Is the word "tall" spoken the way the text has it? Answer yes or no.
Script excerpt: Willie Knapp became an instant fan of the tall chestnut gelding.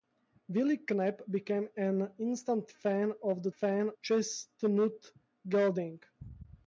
no